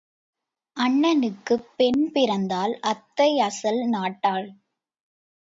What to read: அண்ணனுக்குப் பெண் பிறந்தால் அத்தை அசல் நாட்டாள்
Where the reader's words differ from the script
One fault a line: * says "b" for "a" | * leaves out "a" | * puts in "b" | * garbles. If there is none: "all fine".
all fine